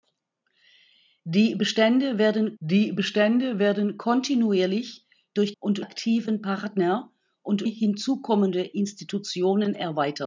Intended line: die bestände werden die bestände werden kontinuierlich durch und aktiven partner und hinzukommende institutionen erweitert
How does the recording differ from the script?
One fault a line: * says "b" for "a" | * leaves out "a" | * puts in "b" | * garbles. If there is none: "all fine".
all fine